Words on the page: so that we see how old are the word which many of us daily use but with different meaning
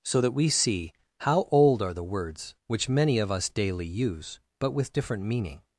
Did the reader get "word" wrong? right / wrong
wrong